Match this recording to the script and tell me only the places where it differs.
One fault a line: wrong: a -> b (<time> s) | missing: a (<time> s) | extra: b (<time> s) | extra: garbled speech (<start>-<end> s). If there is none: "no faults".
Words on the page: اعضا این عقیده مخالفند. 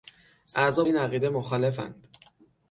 no faults